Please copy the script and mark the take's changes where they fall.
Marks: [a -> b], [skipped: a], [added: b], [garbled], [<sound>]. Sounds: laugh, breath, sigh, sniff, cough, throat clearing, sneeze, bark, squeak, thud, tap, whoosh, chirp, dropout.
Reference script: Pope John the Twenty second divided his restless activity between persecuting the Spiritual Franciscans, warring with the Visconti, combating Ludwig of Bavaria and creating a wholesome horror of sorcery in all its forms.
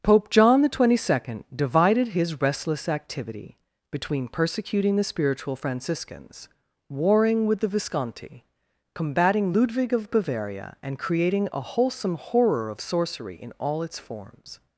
Pope John the Twenty second divided his restless activity between persecuting the Spiritual Franciscans, warring with the Visconti, combating Ludwig of Bavaria and creating a wholesome horror of sorcery in all its forms.